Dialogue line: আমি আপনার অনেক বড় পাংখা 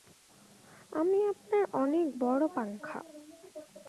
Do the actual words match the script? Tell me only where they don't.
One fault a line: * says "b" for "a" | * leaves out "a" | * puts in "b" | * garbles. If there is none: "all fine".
all fine